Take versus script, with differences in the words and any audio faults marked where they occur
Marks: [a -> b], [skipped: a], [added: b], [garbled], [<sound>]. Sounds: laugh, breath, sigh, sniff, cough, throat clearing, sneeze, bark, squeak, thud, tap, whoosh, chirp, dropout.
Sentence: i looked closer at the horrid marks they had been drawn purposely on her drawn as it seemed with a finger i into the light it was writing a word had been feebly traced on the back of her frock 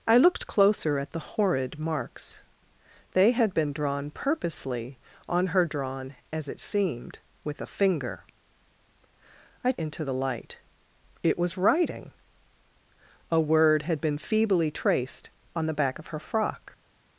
i looked closer at the horrid marks they had been drawn purposely on her drawn as it seemed with a finger i into the light it was writing a word had been feebly traced on the back of her frock